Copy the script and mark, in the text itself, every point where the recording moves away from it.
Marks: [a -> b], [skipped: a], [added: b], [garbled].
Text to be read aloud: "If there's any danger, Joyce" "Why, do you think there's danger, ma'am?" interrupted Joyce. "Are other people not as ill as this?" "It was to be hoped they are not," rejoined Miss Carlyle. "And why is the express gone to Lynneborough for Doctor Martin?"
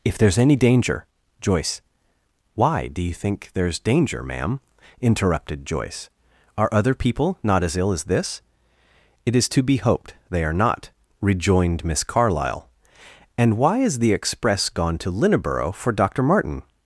"If there's any danger, Joyce" "Why, do you think there's danger, ma'am?" interrupted Joyce. "Are other people not as ill as this?" "It [was -> is] to be hoped they are not," rejoined Miss Carlyle. "And why is the express gone to Lynneborough for Doctor Martin?"